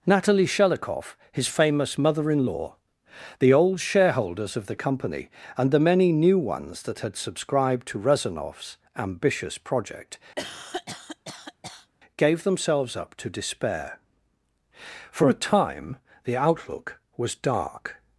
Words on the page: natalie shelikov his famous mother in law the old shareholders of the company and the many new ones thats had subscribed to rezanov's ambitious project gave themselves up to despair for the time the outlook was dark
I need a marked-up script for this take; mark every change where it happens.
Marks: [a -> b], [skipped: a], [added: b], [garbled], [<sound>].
natalie shelikov his famous mother in law the old shareholders of the company and the many new ones [thats -> that] had subscribed to rezanov's ambitious project [cough] gave themselves up to despair for [the -> a] time the outlook was dark